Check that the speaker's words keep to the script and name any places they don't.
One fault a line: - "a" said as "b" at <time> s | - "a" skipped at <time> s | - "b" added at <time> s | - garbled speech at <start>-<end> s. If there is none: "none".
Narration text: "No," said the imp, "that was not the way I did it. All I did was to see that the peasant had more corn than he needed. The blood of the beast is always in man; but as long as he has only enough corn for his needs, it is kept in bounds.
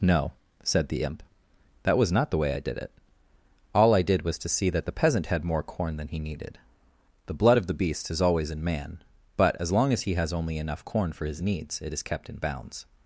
none